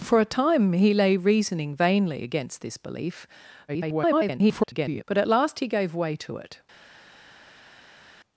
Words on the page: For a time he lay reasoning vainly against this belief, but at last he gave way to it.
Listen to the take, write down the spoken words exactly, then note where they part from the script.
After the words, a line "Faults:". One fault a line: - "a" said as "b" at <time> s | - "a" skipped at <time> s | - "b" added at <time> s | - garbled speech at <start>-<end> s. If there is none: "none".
For a time he lay reasoning vainly against this belief, [garbled] but at last he gave way to it.
Faults:
- garbled speech at 3.7-5.0 s